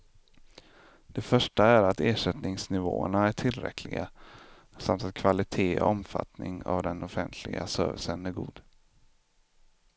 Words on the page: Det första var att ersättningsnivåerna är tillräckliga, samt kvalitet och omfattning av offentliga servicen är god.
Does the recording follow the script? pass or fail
fail